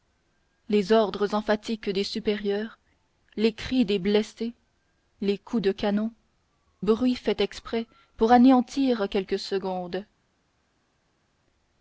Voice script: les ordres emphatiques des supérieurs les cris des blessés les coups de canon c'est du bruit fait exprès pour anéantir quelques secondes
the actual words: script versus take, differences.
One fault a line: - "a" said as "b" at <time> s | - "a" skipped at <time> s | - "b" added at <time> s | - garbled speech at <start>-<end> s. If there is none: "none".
- "c'est du" skipped at 6.1 s